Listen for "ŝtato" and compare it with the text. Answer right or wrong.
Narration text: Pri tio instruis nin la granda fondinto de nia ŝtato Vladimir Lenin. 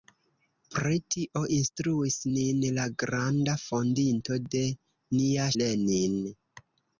wrong